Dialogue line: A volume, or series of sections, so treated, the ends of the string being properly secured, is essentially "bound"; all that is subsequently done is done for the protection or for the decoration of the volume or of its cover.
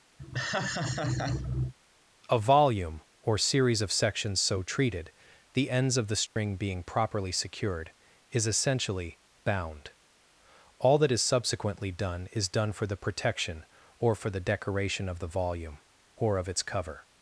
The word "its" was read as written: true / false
true